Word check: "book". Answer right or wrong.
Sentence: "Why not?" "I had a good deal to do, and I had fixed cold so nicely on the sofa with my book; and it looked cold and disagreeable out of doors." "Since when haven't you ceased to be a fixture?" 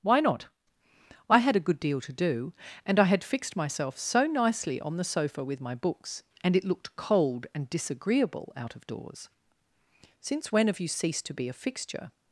wrong